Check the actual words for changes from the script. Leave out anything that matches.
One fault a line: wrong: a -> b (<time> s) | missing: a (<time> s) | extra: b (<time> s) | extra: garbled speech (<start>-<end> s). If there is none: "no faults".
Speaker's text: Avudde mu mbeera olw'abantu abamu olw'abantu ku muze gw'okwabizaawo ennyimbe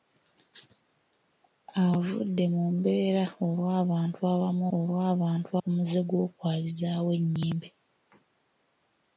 no faults